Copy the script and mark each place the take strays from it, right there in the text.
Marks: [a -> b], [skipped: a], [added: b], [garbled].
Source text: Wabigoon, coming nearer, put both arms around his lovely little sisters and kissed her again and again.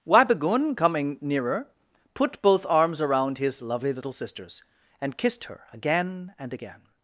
Wabigoon, coming nearer, put both arms around his lovely little sisters and kissed her again and again.